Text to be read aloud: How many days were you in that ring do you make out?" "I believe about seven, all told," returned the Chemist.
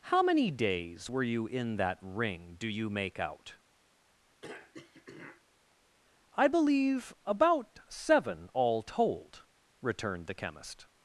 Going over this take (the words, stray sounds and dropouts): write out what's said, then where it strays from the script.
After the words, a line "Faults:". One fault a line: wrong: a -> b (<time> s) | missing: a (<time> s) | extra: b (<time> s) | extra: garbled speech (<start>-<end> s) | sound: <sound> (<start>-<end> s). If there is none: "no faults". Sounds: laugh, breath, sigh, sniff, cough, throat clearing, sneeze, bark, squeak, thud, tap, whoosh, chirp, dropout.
How many days were you in that ring do you make out?" "I believe about seven, all told," returned the Chemist.
Faults:
sound: throat clearing (4.4-5.4 s)